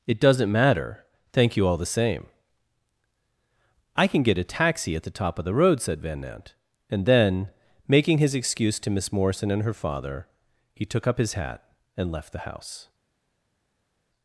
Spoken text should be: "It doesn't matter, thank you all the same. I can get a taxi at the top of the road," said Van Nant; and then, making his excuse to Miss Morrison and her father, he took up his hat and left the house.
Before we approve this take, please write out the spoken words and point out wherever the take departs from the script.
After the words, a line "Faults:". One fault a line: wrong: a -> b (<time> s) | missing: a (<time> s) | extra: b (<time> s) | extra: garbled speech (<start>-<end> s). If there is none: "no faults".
"It doesn't matter, thank you all the same. I can get a taxi at the top of the road," said Van Nant; and then, making his excuse to Miss Morrison and her father, he took up his hat and left the house.
Faults:
no faults